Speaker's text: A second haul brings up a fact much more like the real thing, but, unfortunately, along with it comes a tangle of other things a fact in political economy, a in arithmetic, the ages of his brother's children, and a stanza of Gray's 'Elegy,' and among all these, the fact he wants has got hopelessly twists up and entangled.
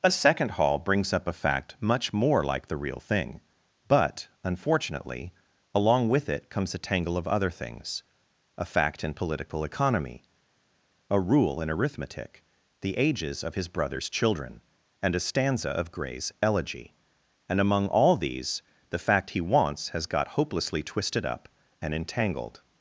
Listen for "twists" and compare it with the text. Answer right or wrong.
wrong